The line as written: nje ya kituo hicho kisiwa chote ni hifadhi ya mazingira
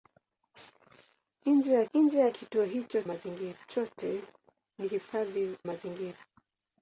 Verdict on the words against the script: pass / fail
fail